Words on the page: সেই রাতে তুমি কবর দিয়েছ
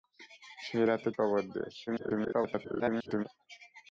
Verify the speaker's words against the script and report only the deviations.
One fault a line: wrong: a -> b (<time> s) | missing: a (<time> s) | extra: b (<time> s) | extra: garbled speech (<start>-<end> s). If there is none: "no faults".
missing: তুমি (1.1 s)
extra: garbled speech (1.9-3.3 s)